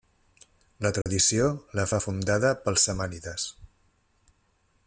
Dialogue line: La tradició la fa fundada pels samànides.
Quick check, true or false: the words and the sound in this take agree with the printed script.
false